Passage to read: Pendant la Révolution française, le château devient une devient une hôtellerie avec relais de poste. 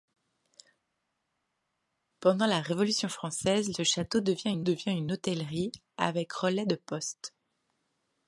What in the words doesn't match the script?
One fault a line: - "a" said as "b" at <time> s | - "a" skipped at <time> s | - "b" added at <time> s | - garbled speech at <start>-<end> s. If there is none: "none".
none